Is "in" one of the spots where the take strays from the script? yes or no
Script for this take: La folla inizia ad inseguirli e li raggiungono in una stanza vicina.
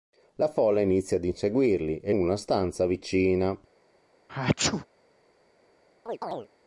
yes